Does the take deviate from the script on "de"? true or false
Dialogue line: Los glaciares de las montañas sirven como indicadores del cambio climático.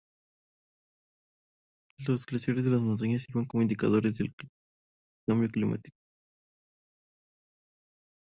false